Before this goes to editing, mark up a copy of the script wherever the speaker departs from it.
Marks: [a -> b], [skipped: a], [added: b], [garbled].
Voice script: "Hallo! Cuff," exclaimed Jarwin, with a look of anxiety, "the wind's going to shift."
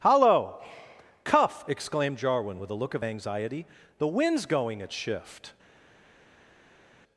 "Hallo! Cuff," exclaimed Jarwin, with a look of anxiety, "the wind's going [to -> at] shift."